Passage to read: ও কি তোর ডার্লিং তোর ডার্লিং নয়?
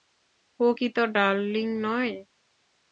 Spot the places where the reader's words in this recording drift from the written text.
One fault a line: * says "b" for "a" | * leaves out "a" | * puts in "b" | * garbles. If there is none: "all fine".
* leaves out "তোর ডার্লিং"